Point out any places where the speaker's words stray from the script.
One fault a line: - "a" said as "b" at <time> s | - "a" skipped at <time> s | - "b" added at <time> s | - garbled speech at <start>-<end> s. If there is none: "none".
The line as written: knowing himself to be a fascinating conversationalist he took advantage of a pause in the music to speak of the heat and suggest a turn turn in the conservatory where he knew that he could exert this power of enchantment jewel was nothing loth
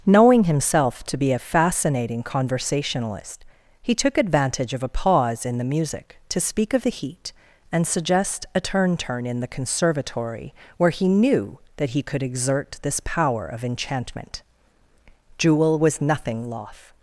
none